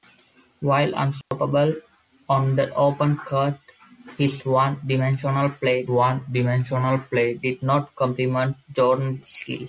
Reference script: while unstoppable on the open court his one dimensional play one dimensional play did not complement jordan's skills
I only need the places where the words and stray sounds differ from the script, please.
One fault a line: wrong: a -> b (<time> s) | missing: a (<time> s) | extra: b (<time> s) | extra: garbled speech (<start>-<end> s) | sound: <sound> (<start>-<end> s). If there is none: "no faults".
sound: dropout (1.2-1.3 s)